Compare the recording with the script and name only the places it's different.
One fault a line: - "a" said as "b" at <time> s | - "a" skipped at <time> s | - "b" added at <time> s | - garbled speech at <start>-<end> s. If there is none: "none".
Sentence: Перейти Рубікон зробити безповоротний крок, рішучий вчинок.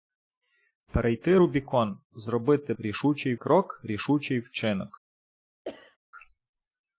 - "безповоротний" said as "рішучий" at 2.8 s